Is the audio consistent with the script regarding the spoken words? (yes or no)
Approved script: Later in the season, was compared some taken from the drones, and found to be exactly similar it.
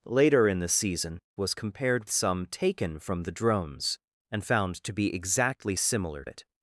yes